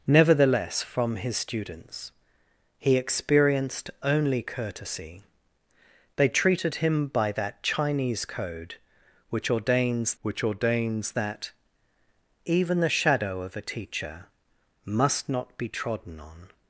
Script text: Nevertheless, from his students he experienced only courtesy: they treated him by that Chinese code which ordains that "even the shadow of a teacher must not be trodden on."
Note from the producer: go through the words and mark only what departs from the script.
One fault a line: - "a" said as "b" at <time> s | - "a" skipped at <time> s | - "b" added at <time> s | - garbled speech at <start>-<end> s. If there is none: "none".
- "which ordains" added at 10.2 s